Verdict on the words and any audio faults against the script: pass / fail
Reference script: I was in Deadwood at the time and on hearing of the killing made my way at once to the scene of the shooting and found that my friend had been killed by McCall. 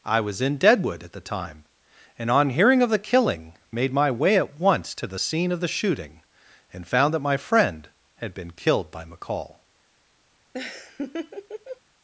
fail